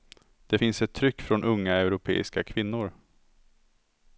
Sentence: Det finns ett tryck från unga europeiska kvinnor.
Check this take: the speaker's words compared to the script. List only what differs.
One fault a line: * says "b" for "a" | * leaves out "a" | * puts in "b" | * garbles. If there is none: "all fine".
all fine